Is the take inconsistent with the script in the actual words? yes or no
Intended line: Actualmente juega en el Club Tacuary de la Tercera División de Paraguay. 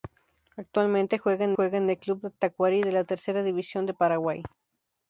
yes